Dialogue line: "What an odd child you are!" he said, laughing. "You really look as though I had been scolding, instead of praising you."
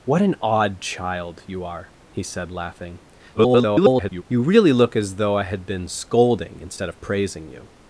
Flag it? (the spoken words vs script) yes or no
yes